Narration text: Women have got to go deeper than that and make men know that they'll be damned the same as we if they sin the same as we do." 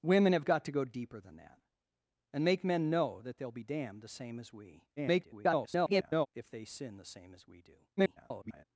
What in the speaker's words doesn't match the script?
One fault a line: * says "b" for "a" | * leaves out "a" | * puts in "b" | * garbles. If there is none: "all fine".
* garbles
* garbles